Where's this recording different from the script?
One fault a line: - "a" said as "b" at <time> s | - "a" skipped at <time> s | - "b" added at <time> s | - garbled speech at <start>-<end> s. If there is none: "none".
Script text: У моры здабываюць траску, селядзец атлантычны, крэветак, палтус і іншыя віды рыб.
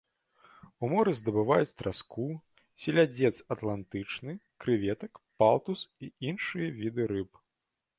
none